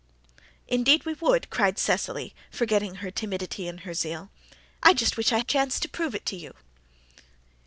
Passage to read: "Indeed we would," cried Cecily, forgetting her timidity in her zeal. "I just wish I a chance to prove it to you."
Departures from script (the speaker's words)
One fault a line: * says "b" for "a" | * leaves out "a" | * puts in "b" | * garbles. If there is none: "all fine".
all fine